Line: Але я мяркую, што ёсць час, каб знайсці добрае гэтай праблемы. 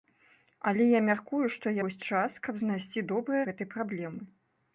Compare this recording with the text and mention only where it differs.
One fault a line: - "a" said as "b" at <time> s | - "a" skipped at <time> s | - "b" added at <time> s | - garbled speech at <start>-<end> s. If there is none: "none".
none